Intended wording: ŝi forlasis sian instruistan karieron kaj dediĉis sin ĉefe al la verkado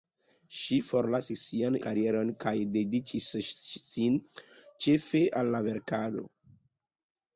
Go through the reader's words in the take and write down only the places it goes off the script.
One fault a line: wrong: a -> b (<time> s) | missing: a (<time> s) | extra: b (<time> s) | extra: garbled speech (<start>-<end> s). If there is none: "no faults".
missing: instruistan (1.8 s)